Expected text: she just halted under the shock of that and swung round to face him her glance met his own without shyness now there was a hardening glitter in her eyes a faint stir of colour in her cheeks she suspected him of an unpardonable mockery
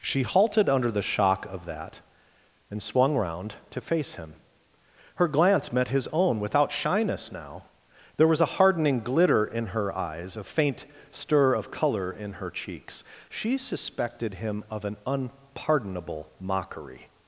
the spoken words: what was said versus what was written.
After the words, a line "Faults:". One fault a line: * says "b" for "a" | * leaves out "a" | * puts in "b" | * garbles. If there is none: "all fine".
she halted under the shock of that and swung round to face him her glance met his own without shyness now there was a hardening glitter in her eyes a faint stir of colour in her cheeks she suspected him of an unpardonable mockery
Faults:
* leaves out "just"